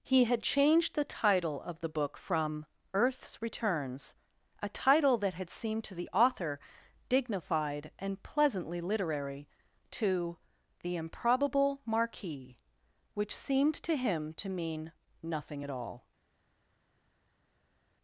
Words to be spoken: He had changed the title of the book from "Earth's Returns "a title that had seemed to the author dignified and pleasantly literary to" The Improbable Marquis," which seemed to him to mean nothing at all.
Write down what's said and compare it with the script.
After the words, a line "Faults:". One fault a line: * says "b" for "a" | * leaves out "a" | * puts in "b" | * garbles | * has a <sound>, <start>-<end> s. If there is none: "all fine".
He had changed the title of the book from "Earth's Returns "a title that had seemed to the author dignified and pleasantly literary to" The Improbable Marquis," which seemed to him to mean nothing at all.
Faults:
all fine